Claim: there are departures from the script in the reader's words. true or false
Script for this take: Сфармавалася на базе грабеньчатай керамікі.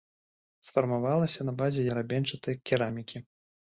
false